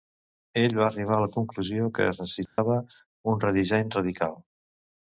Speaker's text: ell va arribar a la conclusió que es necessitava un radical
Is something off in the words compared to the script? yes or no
yes